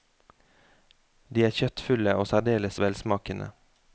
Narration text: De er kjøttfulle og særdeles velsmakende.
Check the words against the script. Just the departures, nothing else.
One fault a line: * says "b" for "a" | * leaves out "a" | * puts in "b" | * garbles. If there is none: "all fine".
all fine